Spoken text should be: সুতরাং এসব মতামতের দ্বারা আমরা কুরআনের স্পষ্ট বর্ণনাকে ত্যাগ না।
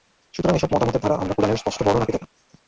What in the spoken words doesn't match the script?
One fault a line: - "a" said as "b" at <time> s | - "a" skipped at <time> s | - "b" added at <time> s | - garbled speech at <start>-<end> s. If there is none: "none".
none